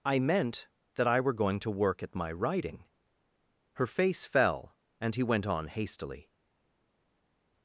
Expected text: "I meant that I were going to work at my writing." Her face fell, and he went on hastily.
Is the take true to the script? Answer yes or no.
yes